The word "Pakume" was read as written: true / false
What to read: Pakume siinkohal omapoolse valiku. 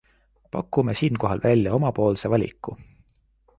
true